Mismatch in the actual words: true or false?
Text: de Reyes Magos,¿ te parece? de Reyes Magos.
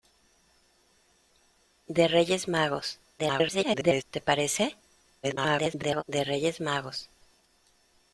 true